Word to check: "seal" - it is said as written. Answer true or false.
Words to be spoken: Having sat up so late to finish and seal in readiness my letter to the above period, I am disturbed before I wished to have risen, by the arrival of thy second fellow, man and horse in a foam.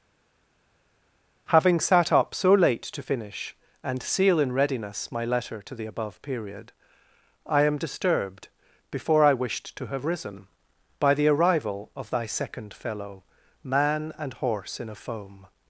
true